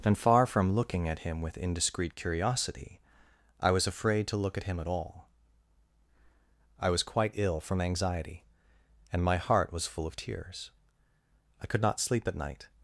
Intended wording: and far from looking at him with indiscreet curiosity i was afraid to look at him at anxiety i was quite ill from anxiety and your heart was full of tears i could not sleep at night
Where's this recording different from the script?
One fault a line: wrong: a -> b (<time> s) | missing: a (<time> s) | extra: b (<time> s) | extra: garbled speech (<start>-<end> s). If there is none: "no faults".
wrong: anxiety -> all (4.9 s)
wrong: your -> my (9.2 s)